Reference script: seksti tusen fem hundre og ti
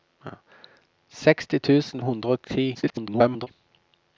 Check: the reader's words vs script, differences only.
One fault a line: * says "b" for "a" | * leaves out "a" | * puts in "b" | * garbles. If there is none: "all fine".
* leaves out "fem"
* garbles